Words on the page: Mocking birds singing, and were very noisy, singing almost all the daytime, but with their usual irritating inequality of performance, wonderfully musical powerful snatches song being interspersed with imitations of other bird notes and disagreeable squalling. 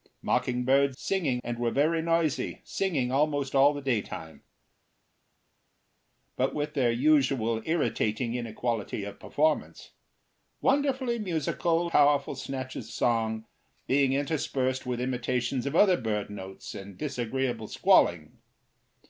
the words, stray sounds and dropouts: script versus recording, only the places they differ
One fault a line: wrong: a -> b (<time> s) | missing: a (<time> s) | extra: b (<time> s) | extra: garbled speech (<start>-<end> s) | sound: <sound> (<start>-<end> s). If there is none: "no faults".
no faults